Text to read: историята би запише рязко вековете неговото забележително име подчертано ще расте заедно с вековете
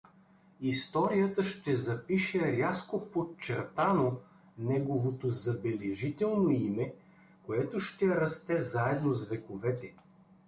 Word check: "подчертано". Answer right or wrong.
wrong